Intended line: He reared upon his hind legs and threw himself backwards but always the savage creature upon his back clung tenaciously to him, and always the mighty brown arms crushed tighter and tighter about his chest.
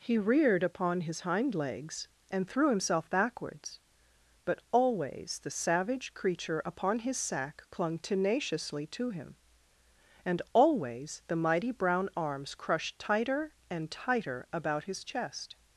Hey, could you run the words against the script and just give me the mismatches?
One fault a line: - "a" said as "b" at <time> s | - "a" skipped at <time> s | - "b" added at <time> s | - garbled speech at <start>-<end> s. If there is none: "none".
- "back" said as "sack" at 7.2 s